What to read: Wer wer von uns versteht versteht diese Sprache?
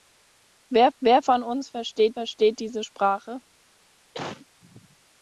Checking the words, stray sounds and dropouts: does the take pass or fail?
fail